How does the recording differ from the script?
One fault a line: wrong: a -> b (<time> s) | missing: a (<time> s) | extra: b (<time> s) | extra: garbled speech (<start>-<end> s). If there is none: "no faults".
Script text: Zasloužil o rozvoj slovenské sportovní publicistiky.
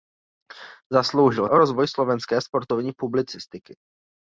no faults